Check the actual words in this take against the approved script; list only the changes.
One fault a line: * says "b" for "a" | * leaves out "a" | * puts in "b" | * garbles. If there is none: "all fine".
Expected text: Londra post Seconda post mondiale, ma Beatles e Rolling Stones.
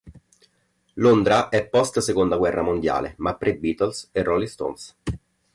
* puts in "è"
* says "guerra" for "post"
* puts in "pre"